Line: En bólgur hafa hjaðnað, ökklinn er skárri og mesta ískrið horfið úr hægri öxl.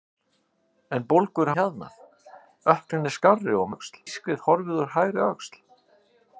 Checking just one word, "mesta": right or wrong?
wrong